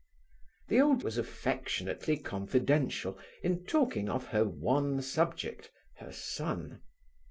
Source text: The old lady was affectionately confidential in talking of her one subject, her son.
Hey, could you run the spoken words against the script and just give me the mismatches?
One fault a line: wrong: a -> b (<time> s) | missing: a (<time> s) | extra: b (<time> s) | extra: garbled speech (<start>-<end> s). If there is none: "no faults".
missing: lady (1.1 s)